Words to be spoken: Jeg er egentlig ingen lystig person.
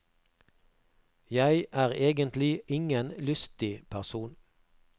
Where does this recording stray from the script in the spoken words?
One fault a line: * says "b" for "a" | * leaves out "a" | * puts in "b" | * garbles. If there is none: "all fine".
all fine